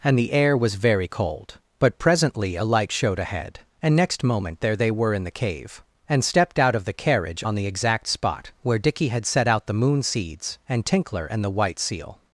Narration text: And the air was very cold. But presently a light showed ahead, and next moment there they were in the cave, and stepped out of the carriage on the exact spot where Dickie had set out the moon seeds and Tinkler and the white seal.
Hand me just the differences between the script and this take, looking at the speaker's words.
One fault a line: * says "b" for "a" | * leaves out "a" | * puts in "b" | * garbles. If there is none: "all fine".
all fine